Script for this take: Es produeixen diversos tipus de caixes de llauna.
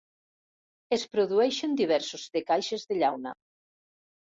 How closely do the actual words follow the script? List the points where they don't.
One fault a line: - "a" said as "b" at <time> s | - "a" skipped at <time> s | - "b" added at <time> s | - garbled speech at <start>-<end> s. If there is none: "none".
- "tipus" skipped at 2.2 s